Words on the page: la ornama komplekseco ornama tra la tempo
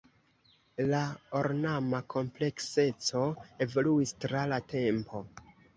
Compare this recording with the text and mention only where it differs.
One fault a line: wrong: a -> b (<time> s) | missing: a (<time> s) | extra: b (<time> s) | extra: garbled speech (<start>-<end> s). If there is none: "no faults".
wrong: ornama -> evoluis (3.7 s)